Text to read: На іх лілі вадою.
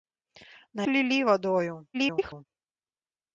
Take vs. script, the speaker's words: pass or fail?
fail